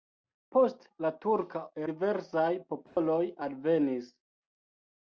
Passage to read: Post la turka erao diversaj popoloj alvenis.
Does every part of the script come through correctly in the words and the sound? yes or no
no